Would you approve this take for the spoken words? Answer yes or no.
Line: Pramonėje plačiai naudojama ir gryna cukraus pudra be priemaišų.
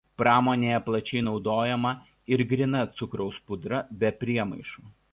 yes